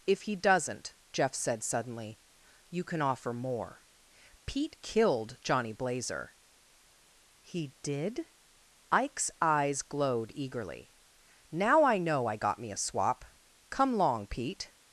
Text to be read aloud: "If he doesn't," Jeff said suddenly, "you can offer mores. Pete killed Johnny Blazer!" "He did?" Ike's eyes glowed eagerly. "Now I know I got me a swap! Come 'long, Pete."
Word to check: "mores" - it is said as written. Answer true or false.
false